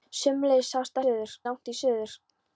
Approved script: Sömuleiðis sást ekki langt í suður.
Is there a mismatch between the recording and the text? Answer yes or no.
yes